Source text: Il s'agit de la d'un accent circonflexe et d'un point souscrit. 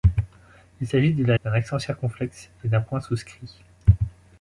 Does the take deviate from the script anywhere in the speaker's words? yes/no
no